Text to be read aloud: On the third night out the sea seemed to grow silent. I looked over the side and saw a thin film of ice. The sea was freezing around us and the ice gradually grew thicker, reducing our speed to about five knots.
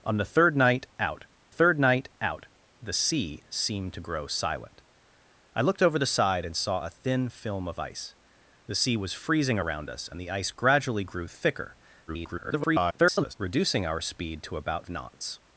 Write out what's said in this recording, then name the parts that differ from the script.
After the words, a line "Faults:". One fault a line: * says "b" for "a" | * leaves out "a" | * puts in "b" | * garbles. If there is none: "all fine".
On the third night out third night out the sea seemed to grow silent. I looked over the side and saw a thin film of ice. The sea was freezing around us and the ice gradually grew thicker, [garbled] reducing our speed to about knots.
Faults:
* puts in "third night out"
* garbles
* leaves out "five"